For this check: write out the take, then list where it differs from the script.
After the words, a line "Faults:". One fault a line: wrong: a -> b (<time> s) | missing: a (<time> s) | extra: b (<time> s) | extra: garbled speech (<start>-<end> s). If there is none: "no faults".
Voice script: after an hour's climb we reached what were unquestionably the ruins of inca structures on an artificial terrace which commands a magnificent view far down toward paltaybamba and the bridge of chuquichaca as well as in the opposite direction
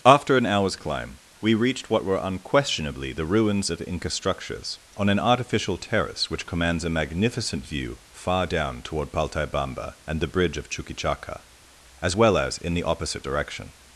after an hour's climb we reached what were unquestionably the ruins of inca structures on an artificial terrace which commands a magnificent view far down toward paltaybamba and the bridge of chuquichaca as well as in the opposite direction
Faults:
no faults